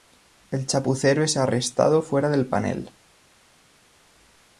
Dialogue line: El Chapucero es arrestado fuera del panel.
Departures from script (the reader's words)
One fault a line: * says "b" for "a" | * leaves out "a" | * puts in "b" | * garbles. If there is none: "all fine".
all fine